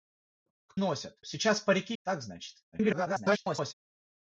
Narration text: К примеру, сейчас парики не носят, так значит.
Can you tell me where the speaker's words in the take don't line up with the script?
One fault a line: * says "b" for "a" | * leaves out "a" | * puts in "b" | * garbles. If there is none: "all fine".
* says "носят" for "примеру"
* leaves out "не носят"
* garbles